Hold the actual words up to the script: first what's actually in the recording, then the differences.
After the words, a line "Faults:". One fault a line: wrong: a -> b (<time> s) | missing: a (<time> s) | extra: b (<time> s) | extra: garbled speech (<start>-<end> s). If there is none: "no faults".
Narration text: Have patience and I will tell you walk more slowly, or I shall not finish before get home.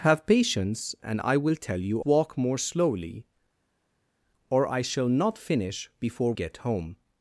Have patience and I will tell you walk more slowly, or I shall not finish before get home.
Faults:
no faults